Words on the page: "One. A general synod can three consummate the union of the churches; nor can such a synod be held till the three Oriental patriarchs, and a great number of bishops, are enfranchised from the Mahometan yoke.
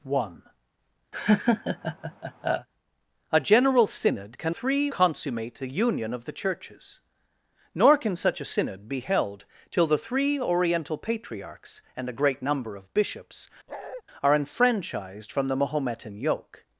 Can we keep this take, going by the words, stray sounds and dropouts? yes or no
no